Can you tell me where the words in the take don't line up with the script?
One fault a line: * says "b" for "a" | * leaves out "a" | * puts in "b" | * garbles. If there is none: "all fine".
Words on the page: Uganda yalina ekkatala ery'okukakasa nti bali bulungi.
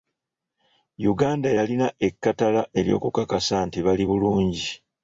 all fine